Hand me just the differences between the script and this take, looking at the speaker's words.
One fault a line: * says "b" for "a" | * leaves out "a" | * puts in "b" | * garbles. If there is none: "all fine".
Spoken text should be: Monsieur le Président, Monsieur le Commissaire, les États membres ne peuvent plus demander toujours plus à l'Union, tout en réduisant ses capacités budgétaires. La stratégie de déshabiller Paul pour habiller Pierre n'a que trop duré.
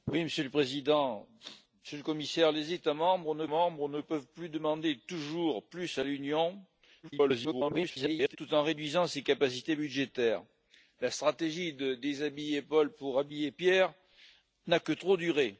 * puts in "membres ne"
* garbles